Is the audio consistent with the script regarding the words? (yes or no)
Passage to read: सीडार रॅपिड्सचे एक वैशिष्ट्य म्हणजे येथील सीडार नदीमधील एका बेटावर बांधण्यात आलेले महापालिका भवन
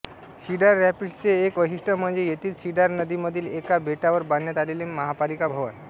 yes